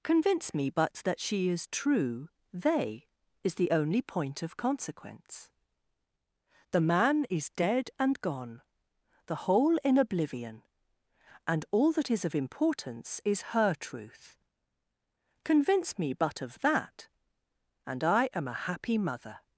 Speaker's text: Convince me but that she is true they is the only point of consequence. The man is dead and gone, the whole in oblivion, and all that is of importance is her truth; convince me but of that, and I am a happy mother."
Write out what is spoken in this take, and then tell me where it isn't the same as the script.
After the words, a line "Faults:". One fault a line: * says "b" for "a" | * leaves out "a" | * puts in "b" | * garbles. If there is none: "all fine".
Convince me but that she is true they is the only point of consequence. The man is dead and gone, the whole in oblivion, and all that is of importance is her truth; convince me but of that, and I am a happy mother."
Faults:
all fine